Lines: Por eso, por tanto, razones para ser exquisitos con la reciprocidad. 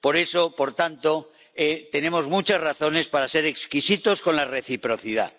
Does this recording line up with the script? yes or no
no